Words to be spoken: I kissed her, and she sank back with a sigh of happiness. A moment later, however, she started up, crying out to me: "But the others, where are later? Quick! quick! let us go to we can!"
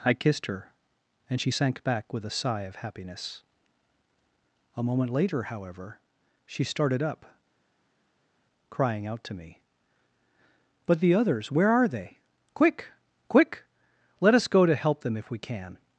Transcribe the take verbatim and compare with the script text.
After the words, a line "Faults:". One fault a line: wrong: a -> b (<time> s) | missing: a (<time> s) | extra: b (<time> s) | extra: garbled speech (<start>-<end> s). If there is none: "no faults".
I kissed her, and she sank back with a sigh of happiness. A moment later, however, she started up, crying out to me: "But the others, where are they? Quick! quick! let us go to help them if we can!"
Faults:
wrong: later -> they (11.9 s)
extra: help them if (14.7 s)